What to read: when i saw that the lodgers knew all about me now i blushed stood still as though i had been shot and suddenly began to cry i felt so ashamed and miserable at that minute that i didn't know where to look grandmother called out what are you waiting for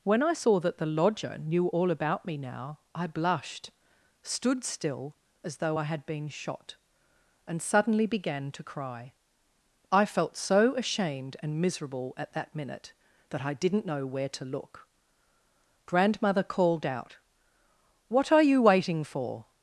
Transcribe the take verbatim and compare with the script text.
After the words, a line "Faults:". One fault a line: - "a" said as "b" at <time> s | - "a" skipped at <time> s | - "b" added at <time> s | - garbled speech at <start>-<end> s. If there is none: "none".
when i saw that the lodger knew all about me now i blushed stood still as though i had been shot and suddenly began to cry i felt so ashamed and miserable at that minute that i didn't know where to look grandmother called out what are you waiting for
Faults:
- "lodgers" said as "lodger" at 0.9 s